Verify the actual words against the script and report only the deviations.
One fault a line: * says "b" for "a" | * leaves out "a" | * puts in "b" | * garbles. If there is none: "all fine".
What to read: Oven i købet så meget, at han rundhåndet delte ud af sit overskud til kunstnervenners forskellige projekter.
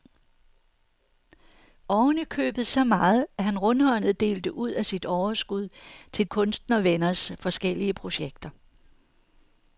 all fine